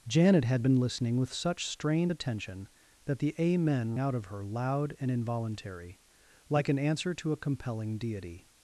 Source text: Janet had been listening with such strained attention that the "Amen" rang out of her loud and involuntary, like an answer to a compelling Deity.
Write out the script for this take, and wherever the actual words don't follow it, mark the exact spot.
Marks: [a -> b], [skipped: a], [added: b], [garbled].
Janet had been listening with such strained attention that the "Amen" [skipped: rang] out of her loud and involuntary, like an answer to a compelling Deity.